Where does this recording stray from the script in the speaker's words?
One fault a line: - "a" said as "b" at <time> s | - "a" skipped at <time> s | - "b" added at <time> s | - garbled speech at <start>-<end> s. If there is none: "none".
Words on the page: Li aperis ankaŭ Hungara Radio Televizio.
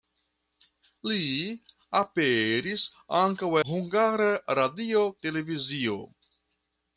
none